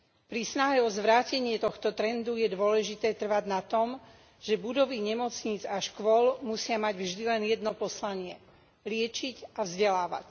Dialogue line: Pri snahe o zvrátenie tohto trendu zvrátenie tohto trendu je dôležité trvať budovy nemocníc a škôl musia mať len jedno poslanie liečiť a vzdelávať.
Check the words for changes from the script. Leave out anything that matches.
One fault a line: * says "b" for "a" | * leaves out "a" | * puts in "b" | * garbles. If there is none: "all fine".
* says "je dôležité trvať na tom že" for "zvrátenie tohto trendu je dôležité trvať"
* puts in "vždy"